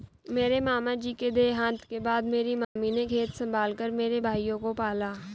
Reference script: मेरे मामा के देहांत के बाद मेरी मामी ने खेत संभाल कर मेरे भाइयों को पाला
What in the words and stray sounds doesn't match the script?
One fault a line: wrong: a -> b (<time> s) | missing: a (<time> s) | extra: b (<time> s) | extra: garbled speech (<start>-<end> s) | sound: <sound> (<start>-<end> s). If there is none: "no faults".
extra: जी (0.9 s)
sound: dropout (2.6-2.8 s)